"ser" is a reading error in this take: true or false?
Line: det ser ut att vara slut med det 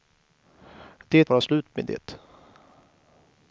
true